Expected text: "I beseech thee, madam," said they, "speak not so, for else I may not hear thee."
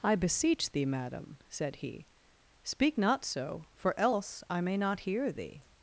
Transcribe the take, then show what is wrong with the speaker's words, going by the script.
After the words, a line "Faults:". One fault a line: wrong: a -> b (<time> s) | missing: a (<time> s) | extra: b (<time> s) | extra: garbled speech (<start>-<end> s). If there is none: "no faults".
"I beseech thee, madam," said he, "speak not so, for else I may not hear thee."
Faults:
wrong: they -> he (1.8 s)